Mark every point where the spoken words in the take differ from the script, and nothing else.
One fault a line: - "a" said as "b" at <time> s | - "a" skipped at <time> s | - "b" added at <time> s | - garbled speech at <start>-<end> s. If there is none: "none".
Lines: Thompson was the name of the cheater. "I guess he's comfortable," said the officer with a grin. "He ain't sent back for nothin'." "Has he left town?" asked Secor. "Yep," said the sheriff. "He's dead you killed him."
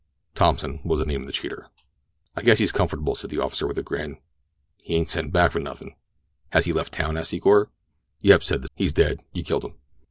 - "sheriff" skipped at 8.7 s